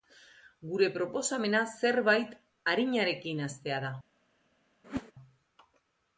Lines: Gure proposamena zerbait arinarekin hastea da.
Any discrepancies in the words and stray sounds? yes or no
yes